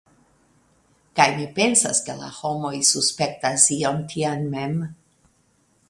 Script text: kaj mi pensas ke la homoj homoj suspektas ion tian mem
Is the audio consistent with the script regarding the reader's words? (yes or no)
no